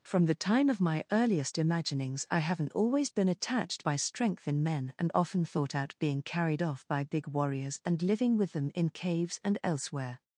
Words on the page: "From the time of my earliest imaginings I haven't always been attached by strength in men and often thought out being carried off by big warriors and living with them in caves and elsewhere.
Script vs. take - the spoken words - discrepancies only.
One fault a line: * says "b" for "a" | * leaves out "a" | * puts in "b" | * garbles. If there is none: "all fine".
all fine